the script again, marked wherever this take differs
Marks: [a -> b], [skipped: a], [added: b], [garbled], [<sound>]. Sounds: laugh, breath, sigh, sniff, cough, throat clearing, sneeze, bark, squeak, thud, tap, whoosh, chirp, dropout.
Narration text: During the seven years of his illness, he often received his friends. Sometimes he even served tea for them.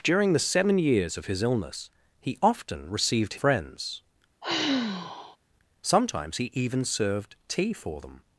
During the seven years of his illness, he often received [skipped: his] friends. [sigh] Sometimes he even served tea for them.